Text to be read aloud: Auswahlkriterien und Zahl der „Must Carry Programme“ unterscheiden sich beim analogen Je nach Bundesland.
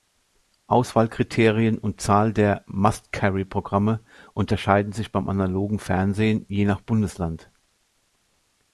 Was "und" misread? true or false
false